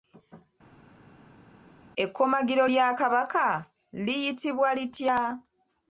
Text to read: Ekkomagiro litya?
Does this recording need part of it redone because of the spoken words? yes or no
yes